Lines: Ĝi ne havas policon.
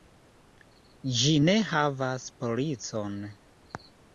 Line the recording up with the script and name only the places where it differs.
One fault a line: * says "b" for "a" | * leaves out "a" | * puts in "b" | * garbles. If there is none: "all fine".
all fine